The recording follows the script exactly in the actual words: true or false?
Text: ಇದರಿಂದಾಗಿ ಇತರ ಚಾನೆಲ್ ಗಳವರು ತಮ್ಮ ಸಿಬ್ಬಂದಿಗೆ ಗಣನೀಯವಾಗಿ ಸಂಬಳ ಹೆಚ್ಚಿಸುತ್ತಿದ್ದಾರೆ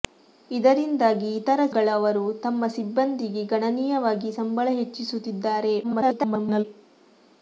false